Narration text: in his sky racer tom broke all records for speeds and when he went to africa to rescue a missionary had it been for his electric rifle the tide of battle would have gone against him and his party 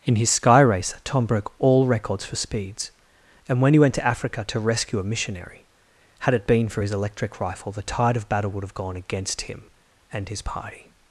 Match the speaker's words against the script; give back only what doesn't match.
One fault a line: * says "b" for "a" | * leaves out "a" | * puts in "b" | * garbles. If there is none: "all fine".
all fine